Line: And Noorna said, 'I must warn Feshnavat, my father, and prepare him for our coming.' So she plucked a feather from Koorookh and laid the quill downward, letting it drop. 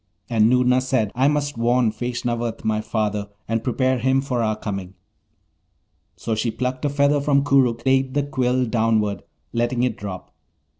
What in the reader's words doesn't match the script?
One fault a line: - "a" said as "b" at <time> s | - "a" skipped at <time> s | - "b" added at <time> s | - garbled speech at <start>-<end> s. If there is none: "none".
- "and" skipped at 7.8 s